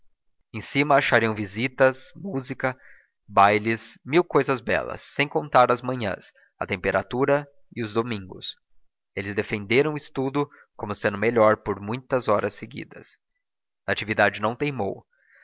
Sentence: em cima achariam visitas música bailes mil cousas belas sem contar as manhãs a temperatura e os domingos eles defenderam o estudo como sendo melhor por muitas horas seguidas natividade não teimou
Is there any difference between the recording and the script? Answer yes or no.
no